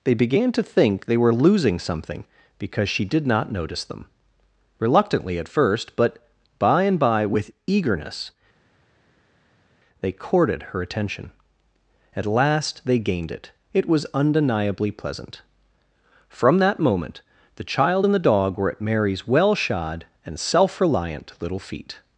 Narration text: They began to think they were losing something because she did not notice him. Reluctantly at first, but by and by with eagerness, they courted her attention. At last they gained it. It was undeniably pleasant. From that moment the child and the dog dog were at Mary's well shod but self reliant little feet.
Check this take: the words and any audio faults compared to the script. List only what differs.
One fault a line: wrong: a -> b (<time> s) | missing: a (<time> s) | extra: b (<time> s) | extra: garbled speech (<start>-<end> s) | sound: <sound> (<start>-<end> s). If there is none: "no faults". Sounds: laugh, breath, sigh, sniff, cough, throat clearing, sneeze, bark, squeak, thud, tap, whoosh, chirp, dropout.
wrong: him -> them (3.8 s)
missing: dog (18.6 s)
wrong: but -> and (20.2 s)